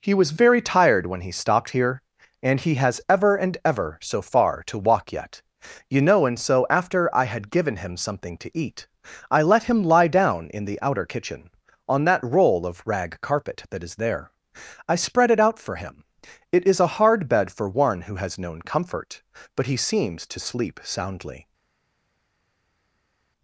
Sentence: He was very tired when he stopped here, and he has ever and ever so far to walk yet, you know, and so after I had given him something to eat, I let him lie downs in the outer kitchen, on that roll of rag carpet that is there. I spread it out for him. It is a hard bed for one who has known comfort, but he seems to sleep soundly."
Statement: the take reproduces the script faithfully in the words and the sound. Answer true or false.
false